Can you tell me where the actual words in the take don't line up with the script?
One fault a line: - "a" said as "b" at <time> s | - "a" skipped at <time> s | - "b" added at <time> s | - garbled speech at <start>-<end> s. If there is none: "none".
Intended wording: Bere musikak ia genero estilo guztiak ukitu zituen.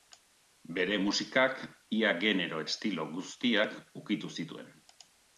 none